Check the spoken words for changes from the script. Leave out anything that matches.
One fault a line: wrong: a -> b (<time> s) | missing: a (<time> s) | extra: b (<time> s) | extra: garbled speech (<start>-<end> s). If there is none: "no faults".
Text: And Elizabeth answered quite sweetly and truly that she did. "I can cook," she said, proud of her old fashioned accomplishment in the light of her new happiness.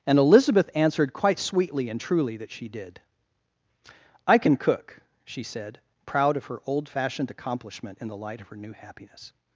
no faults